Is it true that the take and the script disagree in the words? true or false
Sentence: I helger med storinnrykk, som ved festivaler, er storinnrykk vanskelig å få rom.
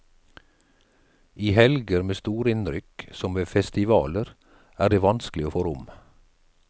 true